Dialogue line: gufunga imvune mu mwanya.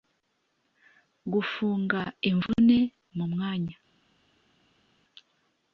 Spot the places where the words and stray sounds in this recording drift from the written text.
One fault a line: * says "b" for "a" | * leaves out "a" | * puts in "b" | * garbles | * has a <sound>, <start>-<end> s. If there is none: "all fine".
all fine